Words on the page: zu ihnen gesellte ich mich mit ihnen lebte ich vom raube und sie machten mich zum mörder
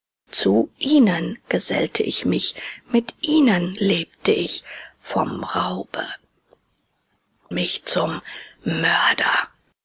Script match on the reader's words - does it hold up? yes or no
no